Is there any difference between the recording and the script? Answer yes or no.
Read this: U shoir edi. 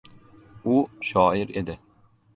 no